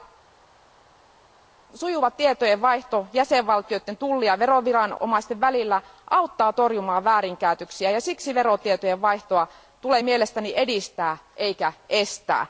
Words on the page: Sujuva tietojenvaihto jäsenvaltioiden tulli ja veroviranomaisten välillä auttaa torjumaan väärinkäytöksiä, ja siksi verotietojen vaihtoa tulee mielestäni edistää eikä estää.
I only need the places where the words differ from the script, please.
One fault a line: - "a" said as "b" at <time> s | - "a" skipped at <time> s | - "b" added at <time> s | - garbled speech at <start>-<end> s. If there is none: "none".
none